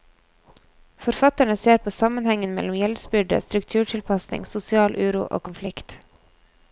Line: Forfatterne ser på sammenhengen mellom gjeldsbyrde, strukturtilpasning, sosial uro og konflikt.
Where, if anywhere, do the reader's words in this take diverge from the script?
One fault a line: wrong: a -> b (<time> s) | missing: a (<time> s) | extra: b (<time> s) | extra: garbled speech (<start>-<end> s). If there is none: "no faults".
no faults